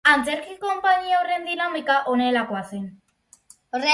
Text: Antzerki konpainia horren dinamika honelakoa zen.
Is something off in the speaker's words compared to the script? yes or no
no